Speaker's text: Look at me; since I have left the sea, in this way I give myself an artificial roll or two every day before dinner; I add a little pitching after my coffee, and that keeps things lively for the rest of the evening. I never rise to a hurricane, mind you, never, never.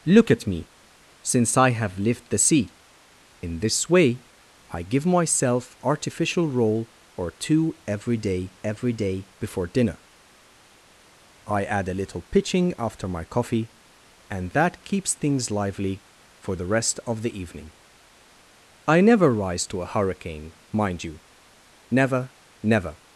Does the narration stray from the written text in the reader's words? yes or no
yes